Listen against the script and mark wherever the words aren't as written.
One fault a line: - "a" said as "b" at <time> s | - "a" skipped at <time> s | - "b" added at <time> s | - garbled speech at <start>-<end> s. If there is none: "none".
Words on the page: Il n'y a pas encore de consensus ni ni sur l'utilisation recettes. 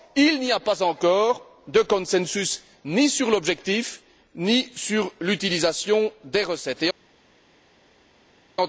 - "sur l'objectif" added at 3.1 s
- "des" added at 6.2 s